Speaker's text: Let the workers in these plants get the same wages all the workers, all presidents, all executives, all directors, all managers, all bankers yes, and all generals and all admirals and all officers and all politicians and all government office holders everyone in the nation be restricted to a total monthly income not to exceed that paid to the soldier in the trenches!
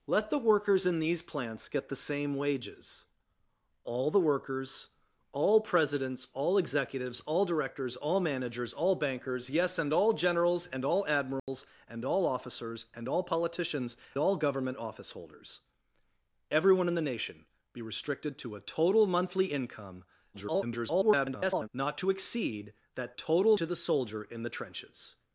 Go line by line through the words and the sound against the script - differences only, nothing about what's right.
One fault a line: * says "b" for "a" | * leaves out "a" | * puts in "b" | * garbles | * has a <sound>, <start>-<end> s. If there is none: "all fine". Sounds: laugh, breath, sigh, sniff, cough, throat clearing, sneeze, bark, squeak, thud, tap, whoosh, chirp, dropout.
* has a dropout, 11.4-11.5 s
* leaves out "and"
* garbles
* says "total" for "paid"